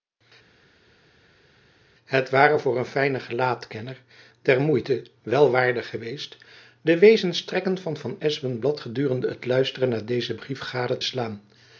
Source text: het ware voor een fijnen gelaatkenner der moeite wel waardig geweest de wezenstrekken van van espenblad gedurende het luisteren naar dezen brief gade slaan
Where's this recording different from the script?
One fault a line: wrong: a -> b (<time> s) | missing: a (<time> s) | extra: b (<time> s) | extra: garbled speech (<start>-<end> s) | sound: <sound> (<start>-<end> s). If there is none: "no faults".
no faults